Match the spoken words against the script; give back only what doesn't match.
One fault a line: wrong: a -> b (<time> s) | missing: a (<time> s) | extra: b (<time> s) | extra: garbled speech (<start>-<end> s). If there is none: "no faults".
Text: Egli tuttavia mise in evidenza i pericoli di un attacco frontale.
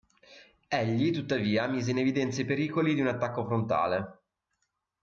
no faults